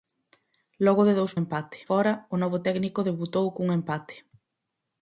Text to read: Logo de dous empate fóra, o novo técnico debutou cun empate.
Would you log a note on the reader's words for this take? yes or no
no